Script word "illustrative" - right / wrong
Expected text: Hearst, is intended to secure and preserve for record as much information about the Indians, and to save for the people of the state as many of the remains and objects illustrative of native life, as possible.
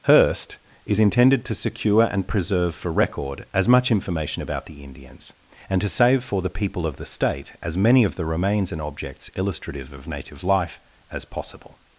right